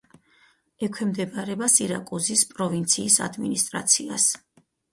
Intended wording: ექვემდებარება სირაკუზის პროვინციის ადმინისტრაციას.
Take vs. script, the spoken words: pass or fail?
pass